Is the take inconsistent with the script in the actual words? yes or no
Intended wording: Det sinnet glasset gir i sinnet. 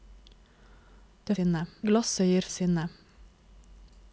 no